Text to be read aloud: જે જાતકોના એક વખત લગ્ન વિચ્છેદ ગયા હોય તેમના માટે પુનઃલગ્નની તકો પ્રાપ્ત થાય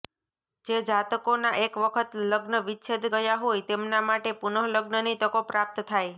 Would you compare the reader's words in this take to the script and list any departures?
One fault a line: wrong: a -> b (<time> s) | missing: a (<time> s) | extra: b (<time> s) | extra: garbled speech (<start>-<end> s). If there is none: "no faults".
no faults